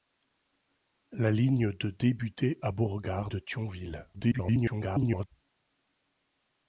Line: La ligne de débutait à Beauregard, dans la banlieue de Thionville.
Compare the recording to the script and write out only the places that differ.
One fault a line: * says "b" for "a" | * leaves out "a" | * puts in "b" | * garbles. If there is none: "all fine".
* leaves out "dans la banlieue"
* garbles